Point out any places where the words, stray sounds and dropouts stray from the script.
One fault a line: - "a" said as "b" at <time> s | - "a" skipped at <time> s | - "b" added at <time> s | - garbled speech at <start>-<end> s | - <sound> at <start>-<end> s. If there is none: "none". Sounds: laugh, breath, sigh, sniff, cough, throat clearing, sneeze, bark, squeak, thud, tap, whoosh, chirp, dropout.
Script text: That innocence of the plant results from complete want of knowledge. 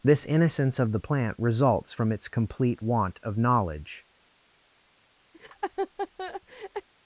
- "That" said as "This" at 0.0 s
- "its" added at 2.1 s
- laugh at 5.3-6.9 s